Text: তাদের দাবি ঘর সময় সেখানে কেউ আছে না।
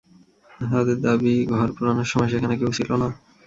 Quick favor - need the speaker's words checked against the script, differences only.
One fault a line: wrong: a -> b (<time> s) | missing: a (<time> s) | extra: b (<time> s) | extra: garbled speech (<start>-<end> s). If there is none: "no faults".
extra: পোড়ানোর (1.8 s)
wrong: আছে -> ছিল (2.8 s)